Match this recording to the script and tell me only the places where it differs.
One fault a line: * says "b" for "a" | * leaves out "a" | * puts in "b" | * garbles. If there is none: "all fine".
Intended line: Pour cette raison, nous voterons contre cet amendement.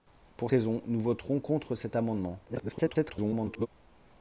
* leaves out "cette"
* garbles